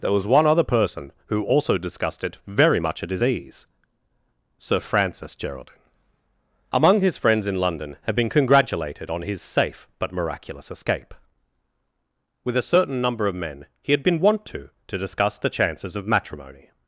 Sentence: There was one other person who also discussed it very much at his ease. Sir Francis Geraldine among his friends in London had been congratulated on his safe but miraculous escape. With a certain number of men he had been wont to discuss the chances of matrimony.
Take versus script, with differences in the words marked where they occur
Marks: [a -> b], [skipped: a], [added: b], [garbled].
There was one other person who also discussed it very much at his ease. Sir Francis Geraldine among his friends in London had been congratulated on his safe but miraculous escape. With a certain number of men he had been wont to [added: to] discuss the chances of matrimony.